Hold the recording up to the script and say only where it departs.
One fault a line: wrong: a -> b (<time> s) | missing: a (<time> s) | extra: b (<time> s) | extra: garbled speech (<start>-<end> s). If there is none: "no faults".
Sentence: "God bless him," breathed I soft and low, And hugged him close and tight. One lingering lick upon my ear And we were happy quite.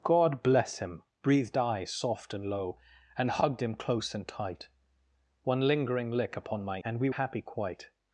missing: ear (6.8 s)
missing: were (7.1 s)